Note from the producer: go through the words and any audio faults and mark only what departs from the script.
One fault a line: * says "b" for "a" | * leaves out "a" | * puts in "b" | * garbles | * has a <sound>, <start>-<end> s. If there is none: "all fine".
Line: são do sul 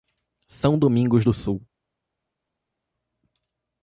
* puts in "domingos"